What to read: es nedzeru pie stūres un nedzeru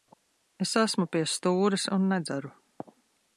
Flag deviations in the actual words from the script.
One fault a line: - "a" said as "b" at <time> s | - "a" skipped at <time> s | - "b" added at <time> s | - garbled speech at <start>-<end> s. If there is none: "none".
- "nedzeru" said as "esmu" at 0.8 s